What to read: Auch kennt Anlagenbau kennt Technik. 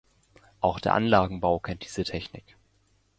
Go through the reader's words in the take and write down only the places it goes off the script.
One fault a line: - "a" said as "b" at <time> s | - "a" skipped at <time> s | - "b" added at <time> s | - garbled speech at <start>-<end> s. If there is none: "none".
- "kennt" said as "der" at 0.8 s
- "diese" added at 1.9 s